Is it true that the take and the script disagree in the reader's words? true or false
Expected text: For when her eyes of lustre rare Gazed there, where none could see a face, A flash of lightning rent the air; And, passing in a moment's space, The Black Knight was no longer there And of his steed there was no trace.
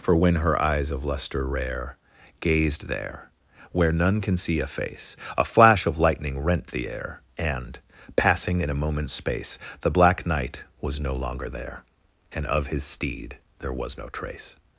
true